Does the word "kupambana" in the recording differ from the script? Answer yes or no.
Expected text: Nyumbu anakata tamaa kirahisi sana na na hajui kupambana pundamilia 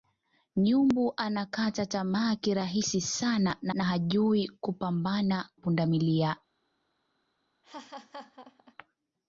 no